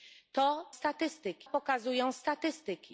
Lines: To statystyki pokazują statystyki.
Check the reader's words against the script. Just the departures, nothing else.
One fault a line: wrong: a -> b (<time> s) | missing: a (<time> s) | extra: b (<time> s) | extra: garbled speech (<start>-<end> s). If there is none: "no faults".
no faults